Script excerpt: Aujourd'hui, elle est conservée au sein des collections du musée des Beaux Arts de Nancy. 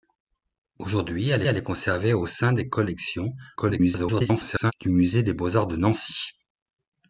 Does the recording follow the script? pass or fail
fail